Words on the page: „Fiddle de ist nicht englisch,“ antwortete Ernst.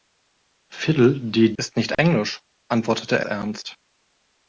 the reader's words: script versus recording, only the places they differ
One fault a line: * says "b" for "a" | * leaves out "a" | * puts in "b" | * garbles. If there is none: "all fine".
all fine